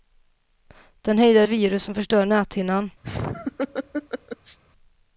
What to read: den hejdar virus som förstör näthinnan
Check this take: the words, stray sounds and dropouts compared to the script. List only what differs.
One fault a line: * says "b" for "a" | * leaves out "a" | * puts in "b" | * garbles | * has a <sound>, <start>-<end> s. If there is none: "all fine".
* has a laugh, 3.0-4.6 s